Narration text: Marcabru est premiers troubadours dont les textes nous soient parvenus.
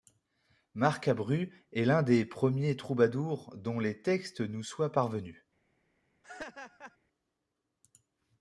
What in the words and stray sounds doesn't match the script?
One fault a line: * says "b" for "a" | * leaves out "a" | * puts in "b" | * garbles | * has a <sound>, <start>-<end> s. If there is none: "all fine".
* puts in "l'un des"
* has a laugh, 6.2-7.0 s